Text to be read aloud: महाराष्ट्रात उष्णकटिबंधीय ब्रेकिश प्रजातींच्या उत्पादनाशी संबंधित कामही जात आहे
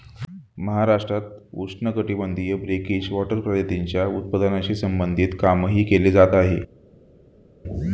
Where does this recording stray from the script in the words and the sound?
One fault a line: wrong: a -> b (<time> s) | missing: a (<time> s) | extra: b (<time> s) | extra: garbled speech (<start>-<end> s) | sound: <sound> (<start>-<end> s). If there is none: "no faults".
extra: वॉटर (3.1 s)
extra: केले (5.8 s)